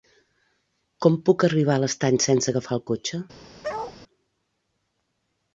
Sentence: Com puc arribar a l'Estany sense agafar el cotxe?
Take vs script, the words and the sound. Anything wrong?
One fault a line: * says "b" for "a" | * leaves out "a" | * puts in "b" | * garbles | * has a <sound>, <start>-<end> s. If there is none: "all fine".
* has a bark, 3.6-4.0 s